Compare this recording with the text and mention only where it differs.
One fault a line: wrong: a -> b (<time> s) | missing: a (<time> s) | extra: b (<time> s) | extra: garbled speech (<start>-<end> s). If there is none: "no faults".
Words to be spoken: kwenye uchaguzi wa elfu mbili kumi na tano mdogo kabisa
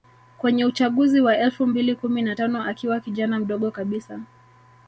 extra: akiwa kijana (2.6 s)